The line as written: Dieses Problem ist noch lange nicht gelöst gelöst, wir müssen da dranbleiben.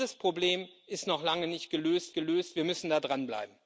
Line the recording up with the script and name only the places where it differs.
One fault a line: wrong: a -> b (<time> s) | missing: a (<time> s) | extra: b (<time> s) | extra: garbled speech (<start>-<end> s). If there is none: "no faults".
no faults